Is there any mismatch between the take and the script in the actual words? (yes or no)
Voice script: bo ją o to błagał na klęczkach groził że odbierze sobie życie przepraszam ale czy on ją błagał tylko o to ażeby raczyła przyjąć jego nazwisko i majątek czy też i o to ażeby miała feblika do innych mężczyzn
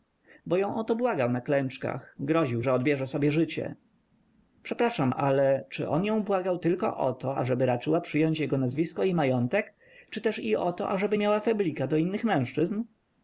no